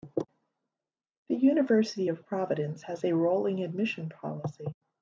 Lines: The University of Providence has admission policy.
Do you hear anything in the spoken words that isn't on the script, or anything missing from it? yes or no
yes